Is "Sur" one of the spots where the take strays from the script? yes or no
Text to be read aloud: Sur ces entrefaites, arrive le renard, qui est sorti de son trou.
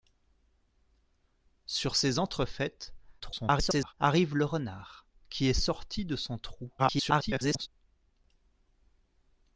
no